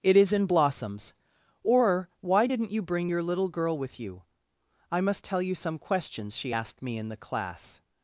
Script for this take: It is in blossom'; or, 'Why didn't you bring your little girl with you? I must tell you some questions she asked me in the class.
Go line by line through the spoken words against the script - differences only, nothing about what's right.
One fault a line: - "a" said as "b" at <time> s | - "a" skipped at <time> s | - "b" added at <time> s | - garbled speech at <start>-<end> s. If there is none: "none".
- "blossom" said as "blossoms" at 0.5 s